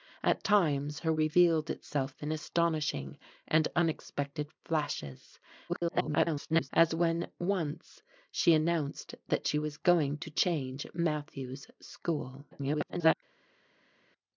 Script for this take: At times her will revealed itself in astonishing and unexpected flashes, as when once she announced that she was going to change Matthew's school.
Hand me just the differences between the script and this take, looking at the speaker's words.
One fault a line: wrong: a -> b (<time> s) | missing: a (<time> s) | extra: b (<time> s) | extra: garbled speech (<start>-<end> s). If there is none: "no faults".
missing: will (1.1 s)
extra: garbled speech (5.7-6.7 s)
extra: garbled speech (12.5-13.1 s)